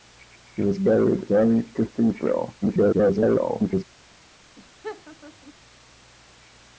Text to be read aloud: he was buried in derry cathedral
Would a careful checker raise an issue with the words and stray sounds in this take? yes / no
yes